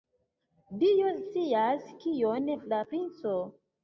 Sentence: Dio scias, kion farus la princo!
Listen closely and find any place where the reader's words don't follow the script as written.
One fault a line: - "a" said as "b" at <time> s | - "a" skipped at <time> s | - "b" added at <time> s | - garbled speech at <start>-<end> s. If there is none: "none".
- "farus" skipped at 2.5 s